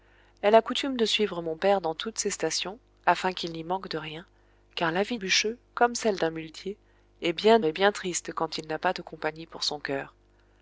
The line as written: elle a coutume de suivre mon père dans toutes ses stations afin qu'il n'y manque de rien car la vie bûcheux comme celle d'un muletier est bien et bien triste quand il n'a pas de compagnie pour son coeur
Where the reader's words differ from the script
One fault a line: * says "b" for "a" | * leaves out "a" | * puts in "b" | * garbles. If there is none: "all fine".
all fine